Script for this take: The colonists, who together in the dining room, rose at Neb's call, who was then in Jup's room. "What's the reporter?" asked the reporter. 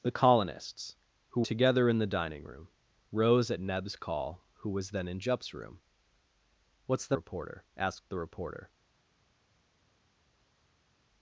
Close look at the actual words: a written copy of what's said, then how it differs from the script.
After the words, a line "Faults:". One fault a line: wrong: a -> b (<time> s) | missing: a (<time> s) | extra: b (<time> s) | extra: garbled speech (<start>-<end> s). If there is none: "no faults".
The colonists, who together in the dining room, rose at Neb's call, who was then in Jup's room. "What's the reporter?" asked the reporter.
Faults:
no faults